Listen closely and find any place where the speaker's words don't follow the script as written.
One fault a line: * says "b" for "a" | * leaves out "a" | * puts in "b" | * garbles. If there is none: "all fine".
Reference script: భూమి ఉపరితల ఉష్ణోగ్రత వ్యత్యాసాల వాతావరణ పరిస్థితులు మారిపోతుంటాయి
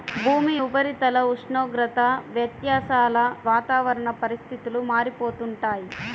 all fine